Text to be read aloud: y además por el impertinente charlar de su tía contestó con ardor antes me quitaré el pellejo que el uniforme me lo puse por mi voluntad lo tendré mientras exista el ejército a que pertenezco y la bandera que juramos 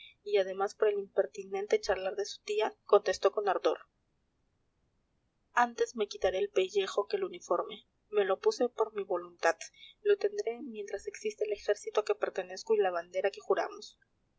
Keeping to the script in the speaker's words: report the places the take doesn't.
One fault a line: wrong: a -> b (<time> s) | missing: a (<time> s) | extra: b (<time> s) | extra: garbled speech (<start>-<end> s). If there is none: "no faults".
no faults